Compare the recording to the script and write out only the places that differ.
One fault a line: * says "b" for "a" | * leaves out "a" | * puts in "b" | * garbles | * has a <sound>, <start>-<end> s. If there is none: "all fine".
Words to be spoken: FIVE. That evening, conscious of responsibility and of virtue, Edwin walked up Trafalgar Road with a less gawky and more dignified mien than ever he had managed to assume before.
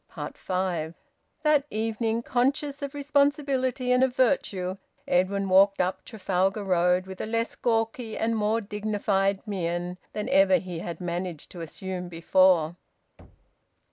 * has a thud, 13.2-13.6 s